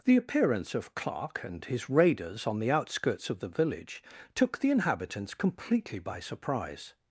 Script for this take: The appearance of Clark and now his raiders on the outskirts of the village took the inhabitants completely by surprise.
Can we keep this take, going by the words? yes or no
no